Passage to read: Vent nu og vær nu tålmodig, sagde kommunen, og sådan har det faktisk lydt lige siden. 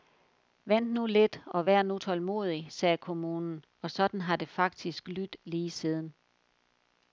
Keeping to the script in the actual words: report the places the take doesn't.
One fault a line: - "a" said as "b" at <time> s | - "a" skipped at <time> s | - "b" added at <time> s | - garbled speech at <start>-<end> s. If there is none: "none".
- "lidt" added at 1.1 s